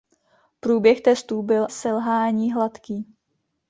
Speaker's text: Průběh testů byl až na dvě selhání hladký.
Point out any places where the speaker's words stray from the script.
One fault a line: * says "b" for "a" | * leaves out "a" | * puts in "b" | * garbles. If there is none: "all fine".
* leaves out "až na dvě"